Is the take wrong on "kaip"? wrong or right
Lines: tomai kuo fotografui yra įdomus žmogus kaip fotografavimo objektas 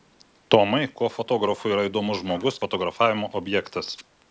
wrong